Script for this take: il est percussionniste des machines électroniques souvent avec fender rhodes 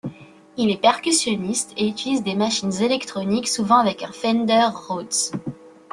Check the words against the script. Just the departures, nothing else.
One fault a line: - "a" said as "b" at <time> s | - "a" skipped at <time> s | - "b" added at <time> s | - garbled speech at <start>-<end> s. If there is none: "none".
- "et utilise" added at 1.7 s
- "un" added at 4.0 s